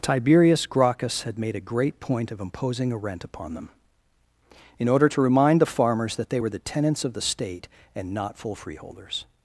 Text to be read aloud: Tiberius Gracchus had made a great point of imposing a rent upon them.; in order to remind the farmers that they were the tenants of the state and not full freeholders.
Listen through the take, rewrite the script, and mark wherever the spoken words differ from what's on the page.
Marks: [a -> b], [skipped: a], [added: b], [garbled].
Tiberius Gracchus had made a great point of imposing a rent upon them.; in order to remind the farmers that they were the tenants of the state and not full freeholders.